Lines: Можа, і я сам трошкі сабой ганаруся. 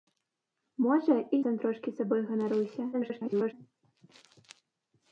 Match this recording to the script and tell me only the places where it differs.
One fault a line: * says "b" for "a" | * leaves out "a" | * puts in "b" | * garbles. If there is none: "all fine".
* leaves out "я"
* garbles